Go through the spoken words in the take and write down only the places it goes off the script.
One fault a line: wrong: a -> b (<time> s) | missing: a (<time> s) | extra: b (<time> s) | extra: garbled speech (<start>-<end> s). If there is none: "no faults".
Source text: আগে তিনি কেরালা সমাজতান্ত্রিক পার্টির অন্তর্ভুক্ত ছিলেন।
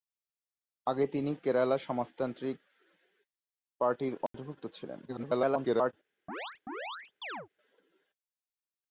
extra: garbled speech (5.1-5.9 s)